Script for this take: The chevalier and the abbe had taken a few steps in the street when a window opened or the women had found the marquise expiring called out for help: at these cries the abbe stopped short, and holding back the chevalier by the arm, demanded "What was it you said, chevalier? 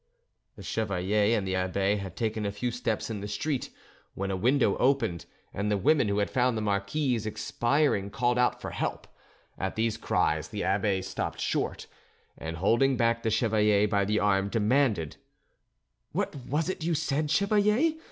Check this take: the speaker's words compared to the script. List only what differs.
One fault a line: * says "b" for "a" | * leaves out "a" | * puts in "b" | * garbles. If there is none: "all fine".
* says "and" for "or"
* puts in "who"